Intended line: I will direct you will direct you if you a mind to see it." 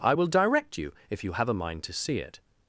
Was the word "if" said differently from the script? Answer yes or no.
yes